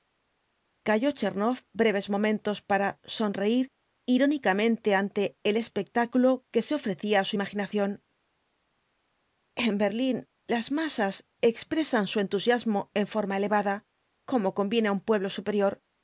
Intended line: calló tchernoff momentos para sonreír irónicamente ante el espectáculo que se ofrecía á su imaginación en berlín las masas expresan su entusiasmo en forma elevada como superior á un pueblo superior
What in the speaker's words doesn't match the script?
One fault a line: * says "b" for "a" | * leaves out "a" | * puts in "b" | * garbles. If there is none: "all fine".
* puts in "breves"
* says "conviene" for "superior"